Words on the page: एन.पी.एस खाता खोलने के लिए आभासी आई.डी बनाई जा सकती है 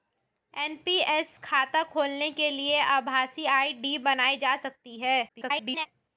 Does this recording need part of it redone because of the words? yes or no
yes